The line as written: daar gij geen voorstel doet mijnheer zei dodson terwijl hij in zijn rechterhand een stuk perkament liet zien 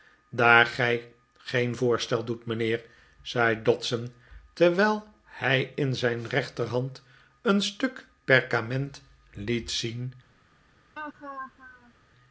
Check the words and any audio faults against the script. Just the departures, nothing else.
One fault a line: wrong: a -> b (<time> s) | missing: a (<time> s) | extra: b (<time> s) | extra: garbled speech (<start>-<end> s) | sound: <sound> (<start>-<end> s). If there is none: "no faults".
sound: laugh (11.0-11.9 s)